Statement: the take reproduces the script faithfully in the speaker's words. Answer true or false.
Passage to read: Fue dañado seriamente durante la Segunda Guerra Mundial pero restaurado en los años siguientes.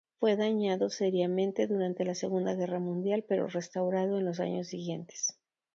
true